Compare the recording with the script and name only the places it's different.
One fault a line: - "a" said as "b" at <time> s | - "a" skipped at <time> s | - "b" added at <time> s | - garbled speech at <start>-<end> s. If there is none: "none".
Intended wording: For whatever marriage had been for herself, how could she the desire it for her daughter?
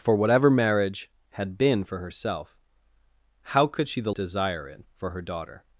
none